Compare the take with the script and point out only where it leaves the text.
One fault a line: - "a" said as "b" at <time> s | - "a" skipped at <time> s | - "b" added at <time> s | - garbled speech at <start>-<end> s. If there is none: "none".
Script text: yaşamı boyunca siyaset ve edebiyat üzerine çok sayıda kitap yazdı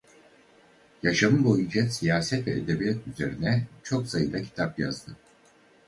none